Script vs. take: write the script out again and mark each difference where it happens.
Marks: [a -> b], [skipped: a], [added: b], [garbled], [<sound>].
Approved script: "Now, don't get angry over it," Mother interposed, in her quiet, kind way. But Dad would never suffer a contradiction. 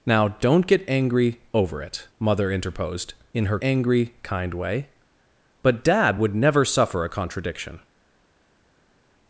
"Now, don't get angry over it," Mother interposed, in her [quiet, -> angry] kind way. But Dad would never suffer a contradiction.